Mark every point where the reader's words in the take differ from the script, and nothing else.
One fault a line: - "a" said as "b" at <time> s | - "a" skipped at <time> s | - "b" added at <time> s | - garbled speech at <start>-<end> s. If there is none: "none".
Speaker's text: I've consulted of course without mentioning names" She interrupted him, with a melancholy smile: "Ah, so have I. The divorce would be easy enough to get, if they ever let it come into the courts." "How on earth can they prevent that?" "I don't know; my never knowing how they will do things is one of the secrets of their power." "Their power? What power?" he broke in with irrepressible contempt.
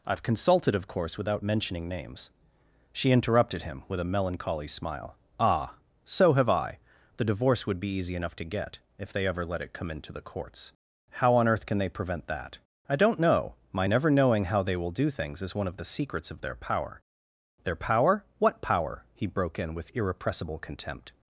none